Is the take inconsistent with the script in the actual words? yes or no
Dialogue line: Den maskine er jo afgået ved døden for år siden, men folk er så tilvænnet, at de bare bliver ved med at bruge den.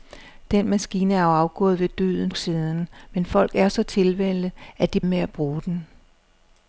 yes